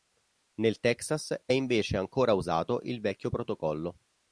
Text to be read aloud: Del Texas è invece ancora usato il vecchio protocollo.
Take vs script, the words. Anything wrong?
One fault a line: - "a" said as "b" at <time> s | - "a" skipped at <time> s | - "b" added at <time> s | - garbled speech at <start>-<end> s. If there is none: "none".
- "Del" said as "Nel" at 0.6 s